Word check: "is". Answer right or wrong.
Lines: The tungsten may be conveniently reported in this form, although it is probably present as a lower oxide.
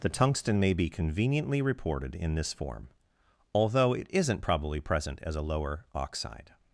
wrong